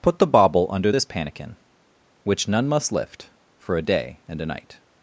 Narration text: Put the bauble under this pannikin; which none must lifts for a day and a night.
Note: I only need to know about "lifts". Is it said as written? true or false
false